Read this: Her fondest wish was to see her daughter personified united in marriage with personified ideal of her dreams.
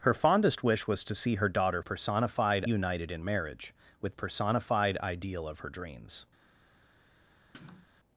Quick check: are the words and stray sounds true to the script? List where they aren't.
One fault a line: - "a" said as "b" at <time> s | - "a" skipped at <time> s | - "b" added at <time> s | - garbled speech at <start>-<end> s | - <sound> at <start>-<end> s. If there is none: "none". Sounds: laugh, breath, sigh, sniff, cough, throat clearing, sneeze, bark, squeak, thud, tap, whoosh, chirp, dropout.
- sniff at 7.5-7.9 s